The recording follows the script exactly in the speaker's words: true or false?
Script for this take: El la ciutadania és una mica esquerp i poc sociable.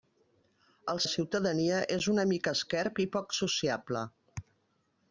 true